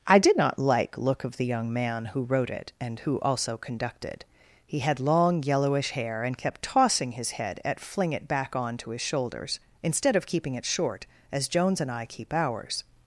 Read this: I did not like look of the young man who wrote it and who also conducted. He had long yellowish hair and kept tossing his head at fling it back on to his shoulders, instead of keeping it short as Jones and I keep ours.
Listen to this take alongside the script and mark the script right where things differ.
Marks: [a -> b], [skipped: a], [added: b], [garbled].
I did not like look of the young man who wrote it and who also conducted. He had long yellowish hair and kept tossing his head at fling it back on to his shoulders, instead of keeping it short as Jones and I keep ours.